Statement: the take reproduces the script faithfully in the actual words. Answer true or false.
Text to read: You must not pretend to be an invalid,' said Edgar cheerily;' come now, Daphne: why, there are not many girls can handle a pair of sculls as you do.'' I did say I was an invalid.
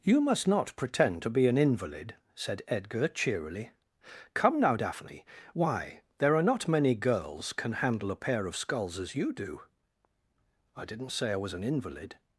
false